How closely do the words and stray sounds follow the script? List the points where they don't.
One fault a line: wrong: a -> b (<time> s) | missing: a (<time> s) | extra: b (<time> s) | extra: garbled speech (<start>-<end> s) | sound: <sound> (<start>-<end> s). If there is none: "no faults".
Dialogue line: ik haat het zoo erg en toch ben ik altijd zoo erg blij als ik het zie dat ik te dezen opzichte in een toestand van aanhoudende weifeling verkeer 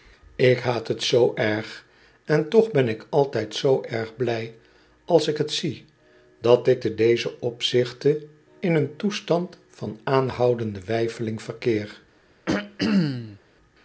sound: throat clearing (12.5-13.4 s)